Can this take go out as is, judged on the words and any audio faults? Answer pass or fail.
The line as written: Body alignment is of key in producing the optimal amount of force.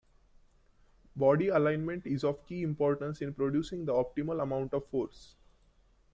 fail